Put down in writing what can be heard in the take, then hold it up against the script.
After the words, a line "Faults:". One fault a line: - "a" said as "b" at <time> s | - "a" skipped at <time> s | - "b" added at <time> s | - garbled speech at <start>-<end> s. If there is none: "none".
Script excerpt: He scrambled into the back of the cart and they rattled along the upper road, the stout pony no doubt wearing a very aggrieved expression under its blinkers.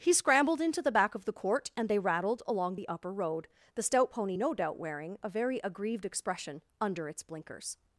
He scrambled into the back of the court and they rattled along the upper road, the stout pony no doubt wearing a very aggrieved expression under its blinkers.
Faults:
- "cart" said as "court" at 1.3 s